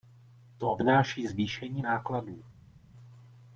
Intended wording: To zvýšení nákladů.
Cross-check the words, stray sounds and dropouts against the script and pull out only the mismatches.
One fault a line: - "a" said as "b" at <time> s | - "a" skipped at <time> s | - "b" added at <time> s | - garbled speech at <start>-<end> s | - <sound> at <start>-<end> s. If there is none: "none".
- "obnáší" added at 0.7 s